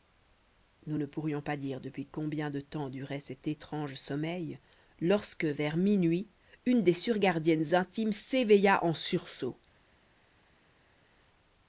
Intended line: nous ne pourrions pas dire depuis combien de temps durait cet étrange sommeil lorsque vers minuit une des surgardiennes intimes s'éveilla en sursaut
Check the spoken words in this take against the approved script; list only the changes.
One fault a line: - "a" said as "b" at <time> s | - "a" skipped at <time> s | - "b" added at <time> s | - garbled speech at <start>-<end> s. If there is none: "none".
none